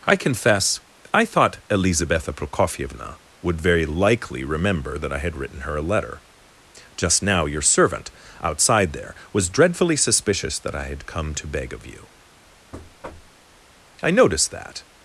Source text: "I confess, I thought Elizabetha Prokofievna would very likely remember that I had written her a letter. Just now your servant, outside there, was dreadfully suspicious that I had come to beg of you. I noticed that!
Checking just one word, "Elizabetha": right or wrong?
right